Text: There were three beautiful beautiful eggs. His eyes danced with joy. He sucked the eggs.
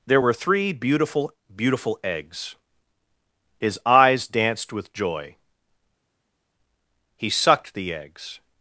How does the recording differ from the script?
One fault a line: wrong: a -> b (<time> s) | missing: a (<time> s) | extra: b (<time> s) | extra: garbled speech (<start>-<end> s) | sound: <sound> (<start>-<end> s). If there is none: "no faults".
no faults